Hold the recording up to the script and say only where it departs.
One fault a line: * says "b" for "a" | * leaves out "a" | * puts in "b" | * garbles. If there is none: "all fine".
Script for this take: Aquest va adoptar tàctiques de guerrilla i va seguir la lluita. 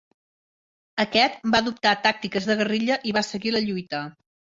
all fine